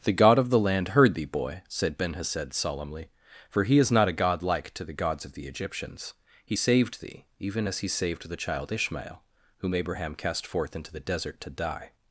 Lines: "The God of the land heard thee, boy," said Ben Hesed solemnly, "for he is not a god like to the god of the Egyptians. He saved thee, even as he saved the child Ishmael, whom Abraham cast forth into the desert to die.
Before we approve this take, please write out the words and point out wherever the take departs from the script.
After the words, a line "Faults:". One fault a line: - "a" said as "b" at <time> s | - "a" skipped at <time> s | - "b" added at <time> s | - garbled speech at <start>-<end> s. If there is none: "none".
"The God of the land heard thee, boy," said Ben Hesed solemnly, "for he is not a god like to the gods of the Egyptians. He saved thee, even as he saved the child Ishmael, whom Abraham cast forth into the desert to die.
Faults:
- "god" said as "gods" at 5.0 s